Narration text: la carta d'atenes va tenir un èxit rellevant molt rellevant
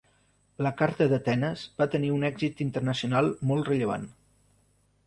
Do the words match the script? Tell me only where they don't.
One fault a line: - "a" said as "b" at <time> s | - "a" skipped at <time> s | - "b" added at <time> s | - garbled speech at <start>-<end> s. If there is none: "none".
- "rellevant" said as "internacional" at 2.7 s